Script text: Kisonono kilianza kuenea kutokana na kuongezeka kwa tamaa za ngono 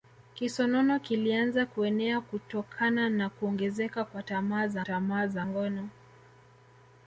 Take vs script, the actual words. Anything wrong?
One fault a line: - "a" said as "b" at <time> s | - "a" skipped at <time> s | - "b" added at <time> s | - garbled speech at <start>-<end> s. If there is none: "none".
- "tamaa za" added at 4.8 s